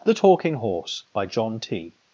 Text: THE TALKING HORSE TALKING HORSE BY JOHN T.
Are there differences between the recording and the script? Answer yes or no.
yes